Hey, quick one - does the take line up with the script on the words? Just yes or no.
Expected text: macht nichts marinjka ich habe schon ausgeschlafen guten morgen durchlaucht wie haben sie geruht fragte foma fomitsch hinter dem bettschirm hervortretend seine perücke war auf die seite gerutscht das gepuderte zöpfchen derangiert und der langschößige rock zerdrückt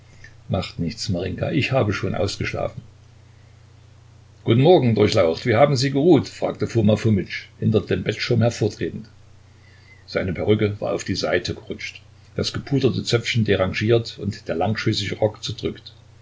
yes